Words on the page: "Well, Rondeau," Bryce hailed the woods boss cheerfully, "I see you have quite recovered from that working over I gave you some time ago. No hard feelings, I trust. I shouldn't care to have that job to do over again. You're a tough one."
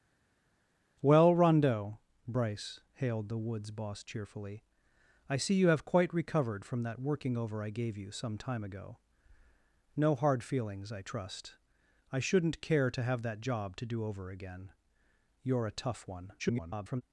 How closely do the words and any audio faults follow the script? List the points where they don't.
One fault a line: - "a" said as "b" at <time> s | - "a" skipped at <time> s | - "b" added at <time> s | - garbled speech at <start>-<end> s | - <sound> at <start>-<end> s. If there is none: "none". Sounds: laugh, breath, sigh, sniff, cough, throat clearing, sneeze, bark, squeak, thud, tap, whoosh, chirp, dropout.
- garbled speech at 16.4-17.0 s